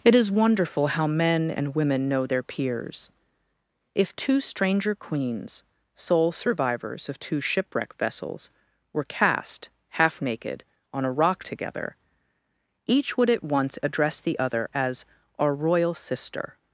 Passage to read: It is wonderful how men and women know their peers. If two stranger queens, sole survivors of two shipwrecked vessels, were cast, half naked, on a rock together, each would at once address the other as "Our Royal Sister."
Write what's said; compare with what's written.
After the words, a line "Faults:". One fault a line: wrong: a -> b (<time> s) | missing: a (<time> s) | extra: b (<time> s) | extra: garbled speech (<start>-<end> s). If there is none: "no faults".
It is wonderful how men and women know their peers. If two stranger queens, sole survivors of two shipwreck vessels, were cast, half naked, on a rock together, each would at once address the other as "Our Royal Sister."
Faults:
wrong: shipwrecked -> shipwreck (7.4 s)